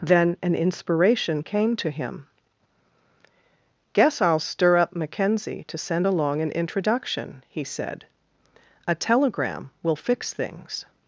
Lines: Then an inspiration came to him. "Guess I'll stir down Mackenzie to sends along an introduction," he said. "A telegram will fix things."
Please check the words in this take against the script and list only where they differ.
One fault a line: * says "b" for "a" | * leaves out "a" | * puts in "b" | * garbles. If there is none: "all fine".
* says "up" for "down"
* says "send" for "sends"